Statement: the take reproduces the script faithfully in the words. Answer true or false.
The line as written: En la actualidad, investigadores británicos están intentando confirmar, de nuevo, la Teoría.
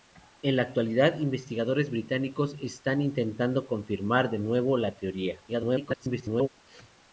false